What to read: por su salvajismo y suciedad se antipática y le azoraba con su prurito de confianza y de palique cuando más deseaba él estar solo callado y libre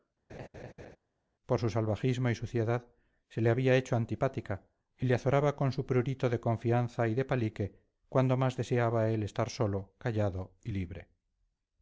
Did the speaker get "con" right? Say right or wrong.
right